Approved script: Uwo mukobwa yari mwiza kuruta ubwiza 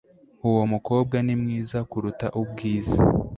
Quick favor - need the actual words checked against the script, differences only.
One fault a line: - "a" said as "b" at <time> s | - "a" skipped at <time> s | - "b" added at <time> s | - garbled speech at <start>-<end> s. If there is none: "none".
- "yari" said as "ni" at 1.3 s